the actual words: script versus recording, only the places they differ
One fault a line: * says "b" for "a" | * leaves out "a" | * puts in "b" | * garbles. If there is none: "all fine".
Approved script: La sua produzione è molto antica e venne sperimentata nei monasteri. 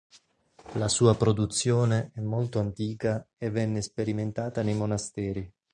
all fine